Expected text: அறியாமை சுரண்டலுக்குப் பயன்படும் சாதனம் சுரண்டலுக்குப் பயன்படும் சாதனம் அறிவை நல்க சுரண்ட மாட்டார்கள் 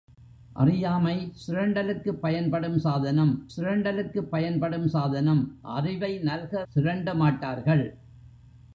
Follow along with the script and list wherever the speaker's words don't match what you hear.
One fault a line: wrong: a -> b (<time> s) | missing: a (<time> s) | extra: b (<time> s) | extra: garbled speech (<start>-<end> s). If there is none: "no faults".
no faults